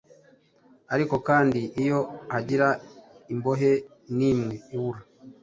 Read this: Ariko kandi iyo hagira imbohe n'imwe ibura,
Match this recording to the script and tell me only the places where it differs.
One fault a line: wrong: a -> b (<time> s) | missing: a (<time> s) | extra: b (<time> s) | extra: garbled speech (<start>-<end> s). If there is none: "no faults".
no faults